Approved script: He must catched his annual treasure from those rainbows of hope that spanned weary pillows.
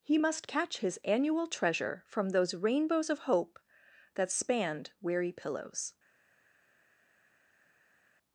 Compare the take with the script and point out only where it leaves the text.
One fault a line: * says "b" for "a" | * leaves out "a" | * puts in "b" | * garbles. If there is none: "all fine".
* says "catch" for "catched"